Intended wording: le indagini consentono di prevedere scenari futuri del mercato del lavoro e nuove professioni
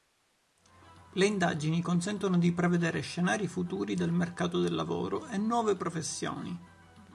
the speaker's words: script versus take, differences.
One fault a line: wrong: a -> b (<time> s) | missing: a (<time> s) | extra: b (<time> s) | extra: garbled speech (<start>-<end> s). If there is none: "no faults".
no faults